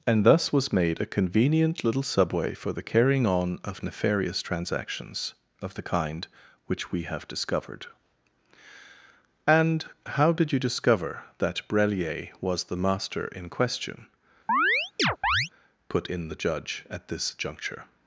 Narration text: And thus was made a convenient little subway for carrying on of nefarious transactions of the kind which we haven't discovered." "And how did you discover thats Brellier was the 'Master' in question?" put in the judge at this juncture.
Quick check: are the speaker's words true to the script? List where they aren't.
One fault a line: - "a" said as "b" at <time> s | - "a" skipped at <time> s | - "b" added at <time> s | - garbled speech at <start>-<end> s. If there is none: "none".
- "the" added at 2.7 s
- "haven't" said as "have" at 7.0 s
- "thats" said as "that" at 11.4 s